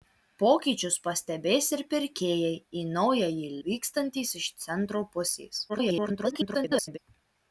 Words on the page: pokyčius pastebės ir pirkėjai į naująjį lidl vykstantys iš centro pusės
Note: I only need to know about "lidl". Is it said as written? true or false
false